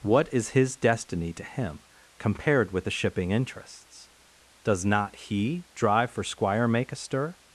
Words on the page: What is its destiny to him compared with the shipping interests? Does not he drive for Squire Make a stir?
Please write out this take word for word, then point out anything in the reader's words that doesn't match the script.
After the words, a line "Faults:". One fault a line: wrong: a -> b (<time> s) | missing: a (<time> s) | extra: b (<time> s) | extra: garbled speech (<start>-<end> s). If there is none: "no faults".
What is his destiny to him compared with the shipping interests? Does not he drive for Squire Make a stir?
Faults:
wrong: its -> his (0.5 s)